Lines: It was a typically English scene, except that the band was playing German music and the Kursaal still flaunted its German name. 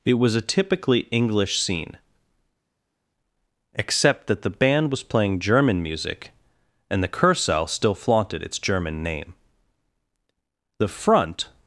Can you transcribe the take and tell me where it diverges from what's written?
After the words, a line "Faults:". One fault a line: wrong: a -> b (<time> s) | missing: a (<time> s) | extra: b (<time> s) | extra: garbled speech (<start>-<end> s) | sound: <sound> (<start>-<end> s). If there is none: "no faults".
It was a typically English scene, except that the band was playing German music and the Kursaal still flaunted its German name. The front
Faults:
extra: The front (10.8 s)